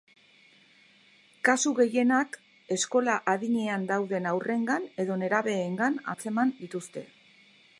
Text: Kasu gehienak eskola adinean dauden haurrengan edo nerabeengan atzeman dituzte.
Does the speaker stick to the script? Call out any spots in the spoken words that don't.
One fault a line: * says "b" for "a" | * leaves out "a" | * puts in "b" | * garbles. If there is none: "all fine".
all fine